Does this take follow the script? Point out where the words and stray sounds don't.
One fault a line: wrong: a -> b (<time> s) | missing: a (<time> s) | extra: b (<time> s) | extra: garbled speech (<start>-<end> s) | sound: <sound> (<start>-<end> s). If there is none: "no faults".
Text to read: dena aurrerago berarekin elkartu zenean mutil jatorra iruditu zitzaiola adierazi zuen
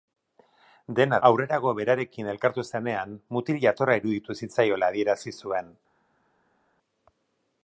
no faults